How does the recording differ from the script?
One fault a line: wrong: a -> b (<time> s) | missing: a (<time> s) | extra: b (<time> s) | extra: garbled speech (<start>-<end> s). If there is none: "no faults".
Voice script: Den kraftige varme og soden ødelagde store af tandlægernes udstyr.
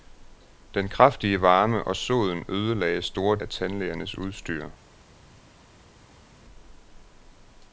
no faults